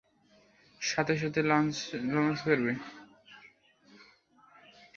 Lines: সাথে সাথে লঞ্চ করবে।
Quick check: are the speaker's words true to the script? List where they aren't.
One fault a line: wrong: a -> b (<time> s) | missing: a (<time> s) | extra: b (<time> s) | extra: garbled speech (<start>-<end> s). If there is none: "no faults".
no faults